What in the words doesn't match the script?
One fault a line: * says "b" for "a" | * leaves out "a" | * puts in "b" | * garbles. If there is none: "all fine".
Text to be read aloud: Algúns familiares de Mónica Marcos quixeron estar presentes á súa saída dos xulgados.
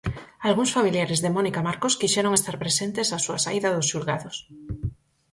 all fine